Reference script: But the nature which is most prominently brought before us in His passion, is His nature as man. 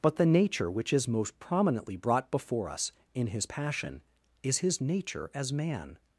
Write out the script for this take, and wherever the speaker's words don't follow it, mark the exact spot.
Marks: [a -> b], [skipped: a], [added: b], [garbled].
But the nature which is most prominently brought before us in His passion, is His nature as man.